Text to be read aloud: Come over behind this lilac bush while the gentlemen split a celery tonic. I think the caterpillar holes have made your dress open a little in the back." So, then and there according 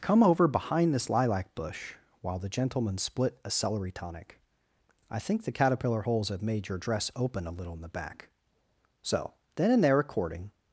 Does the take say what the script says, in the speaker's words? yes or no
yes